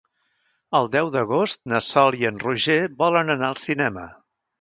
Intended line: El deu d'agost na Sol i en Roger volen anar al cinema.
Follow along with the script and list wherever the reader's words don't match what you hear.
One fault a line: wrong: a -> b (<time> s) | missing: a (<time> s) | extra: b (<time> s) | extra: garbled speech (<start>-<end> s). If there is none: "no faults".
no faults